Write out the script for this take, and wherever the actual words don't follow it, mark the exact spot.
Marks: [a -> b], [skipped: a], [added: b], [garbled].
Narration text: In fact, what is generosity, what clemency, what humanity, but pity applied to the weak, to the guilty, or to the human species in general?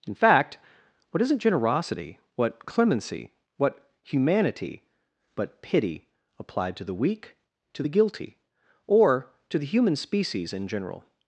In fact, what [is -> isn't] generosity, what clemency, what humanity, but pity applied to the weak, to the guilty, or to the human species in general?